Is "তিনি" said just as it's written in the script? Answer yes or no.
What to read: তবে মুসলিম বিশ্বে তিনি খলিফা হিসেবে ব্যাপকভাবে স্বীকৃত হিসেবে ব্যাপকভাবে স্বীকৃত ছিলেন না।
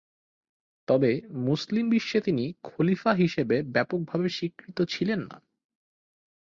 yes